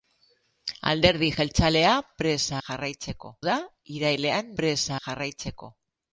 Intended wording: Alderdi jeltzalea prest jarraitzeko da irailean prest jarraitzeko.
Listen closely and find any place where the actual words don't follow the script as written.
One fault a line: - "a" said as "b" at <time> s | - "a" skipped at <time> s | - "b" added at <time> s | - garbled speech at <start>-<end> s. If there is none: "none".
none